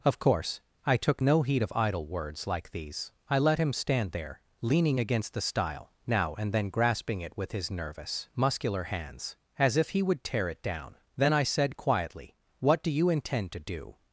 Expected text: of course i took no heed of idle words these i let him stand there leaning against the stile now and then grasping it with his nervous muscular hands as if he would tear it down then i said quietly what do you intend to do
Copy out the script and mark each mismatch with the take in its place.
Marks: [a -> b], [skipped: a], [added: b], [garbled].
of course i took no heed of idle words [added: like] these i let him stand there leaning against the stile now and then grasping it with his nervous muscular hands as if he would tear it down then i said quietly what do you intend to do